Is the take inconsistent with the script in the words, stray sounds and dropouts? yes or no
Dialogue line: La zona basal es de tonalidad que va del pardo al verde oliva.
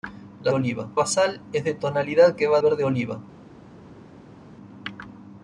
yes